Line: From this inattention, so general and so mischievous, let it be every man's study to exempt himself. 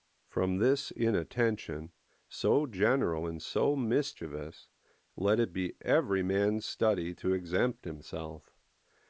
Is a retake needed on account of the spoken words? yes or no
no